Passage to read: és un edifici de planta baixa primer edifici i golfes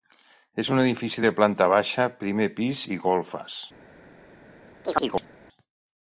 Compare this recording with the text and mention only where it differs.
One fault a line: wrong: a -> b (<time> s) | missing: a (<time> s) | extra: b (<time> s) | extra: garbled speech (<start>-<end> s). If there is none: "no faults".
wrong: edifici -> pis (2.6 s)